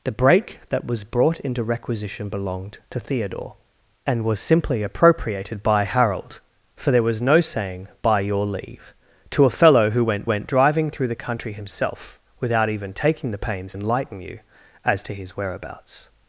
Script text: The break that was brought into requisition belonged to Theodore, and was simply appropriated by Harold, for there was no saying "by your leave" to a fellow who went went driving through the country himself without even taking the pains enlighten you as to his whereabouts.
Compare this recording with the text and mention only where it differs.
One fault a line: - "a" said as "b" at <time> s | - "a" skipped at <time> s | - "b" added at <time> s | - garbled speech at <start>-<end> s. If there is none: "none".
none